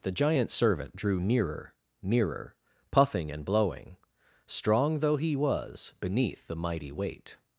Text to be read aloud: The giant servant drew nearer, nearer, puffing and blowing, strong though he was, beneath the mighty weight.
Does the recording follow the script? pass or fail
pass